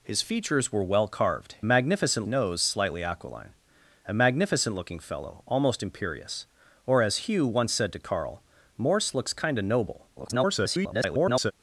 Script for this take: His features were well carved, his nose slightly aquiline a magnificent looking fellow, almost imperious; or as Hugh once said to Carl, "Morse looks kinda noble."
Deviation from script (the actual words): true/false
true